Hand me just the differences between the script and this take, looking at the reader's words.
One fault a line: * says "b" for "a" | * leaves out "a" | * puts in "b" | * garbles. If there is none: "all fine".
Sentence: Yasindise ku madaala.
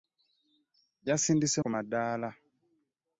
all fine